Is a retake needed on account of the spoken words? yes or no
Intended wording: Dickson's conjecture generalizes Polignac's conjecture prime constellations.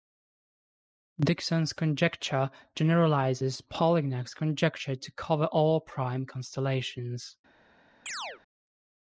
yes